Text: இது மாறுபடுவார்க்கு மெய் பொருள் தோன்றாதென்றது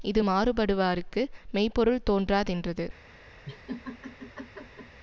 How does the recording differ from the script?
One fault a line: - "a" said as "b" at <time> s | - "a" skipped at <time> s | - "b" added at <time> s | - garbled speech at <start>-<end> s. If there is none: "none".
none